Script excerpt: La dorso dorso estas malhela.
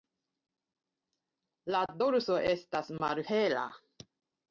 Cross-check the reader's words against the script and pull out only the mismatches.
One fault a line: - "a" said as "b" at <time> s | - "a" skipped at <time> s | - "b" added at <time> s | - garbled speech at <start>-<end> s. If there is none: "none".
- "dorso" skipped at 2.4 s